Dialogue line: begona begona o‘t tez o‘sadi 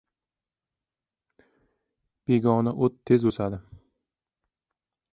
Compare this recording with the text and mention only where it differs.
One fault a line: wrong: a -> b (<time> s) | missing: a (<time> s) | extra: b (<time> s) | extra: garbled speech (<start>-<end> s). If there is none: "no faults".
missing: begona (2.7 s)